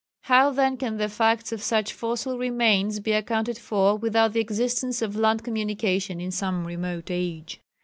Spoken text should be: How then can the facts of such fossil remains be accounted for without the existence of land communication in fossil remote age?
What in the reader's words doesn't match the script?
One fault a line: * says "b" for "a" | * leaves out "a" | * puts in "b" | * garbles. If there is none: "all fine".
* says "some" for "fossil"